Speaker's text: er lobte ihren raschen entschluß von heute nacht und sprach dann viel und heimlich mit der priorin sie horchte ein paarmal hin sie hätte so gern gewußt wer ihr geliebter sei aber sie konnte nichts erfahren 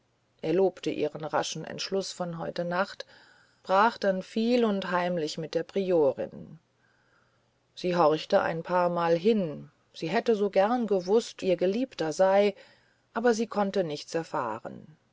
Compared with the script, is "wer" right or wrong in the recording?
wrong